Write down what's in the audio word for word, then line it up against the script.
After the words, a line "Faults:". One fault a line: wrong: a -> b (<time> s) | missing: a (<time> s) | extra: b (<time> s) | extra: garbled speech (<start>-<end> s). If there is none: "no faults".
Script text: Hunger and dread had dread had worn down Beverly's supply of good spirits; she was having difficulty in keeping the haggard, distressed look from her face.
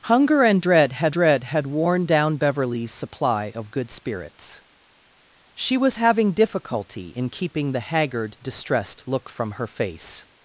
Hunger and dread had dread had worn down Beverly's supply of good spirits; she was having difficulty in keeping the haggard, distressed look from her face.
Faults:
no faults